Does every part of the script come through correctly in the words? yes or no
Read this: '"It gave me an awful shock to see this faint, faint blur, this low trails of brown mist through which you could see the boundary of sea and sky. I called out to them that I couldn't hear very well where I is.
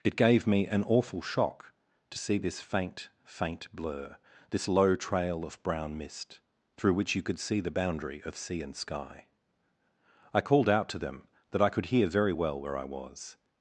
no